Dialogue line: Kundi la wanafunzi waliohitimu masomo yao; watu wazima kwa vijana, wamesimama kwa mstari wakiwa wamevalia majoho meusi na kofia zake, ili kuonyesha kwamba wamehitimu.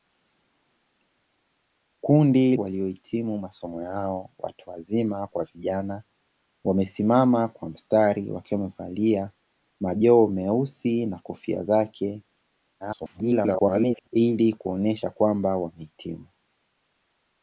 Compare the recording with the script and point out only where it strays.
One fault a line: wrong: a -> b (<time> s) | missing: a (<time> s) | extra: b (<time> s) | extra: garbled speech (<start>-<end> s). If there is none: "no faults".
missing: la wanafunzi (2.5 s)
extra: garbled speech (12.8-14.1 s)